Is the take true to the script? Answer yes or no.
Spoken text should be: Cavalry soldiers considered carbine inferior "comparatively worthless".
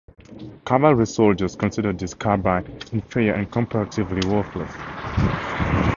no